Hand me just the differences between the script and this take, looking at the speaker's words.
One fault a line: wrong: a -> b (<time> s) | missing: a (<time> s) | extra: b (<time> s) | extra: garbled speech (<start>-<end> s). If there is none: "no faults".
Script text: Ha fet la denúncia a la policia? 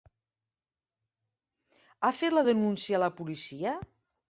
no faults